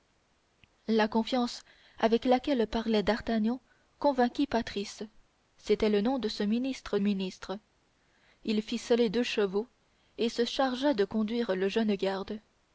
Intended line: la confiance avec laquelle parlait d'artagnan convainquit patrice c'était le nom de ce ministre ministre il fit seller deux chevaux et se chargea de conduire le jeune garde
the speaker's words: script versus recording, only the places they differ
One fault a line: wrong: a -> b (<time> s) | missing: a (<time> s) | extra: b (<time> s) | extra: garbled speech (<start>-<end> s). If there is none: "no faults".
no faults